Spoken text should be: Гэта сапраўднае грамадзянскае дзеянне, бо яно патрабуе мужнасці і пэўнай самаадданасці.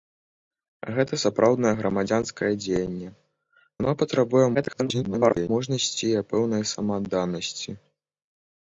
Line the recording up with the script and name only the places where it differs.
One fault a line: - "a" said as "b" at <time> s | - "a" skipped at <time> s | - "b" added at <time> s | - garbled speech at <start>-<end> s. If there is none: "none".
- "бо" skipped at 3.1 s
- garbled speech at 4.5-5.5 s